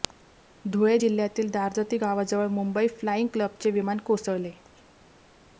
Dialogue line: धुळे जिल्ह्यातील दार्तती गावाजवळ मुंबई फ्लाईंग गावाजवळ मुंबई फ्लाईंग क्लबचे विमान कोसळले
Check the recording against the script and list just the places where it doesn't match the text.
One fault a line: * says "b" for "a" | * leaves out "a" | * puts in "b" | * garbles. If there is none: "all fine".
* leaves out "गावाजवळ मुंबई फ्लाईंग"